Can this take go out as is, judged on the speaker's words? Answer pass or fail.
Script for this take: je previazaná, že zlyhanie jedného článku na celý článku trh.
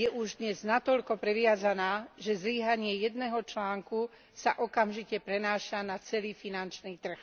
fail